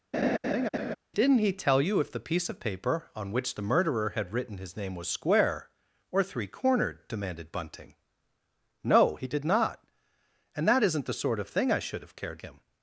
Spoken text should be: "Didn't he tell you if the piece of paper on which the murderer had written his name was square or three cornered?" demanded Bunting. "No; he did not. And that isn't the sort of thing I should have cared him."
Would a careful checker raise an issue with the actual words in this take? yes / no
no